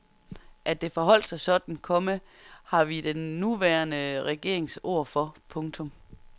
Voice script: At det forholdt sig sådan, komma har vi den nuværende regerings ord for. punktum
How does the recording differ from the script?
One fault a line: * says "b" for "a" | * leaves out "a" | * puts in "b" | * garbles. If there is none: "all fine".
all fine